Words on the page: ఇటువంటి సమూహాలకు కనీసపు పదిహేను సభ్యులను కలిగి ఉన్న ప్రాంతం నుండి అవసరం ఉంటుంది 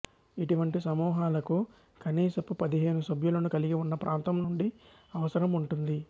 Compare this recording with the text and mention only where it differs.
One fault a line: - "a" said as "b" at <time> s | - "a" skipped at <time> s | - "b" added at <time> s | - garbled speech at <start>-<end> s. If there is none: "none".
none